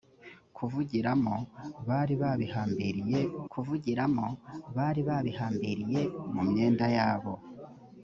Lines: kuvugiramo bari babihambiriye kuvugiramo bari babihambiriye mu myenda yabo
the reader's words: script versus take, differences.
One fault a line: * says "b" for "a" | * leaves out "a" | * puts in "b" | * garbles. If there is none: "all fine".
all fine